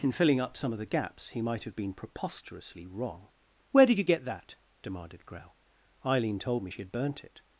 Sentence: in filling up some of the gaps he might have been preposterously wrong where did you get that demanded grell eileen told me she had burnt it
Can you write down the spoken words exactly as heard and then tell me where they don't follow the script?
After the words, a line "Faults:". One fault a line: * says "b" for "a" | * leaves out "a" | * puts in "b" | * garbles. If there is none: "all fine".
in filling up some of the gaps he might have been preposterously wrong where did you get that demanded grell eileen told me she had burnt it
Faults:
all fine